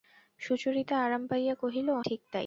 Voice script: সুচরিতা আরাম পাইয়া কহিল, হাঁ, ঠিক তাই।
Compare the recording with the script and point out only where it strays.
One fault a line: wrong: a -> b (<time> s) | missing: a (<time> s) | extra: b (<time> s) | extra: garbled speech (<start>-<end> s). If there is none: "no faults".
missing: হাঁ (1.9 s)